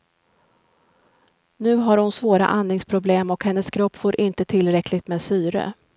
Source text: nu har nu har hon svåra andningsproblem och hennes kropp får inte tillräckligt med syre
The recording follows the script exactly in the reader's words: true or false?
false